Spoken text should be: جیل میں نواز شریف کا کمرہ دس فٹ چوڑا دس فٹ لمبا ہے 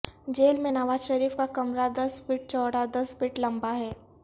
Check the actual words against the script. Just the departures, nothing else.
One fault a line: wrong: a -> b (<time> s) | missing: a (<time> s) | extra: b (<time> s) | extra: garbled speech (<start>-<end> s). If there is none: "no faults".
no faults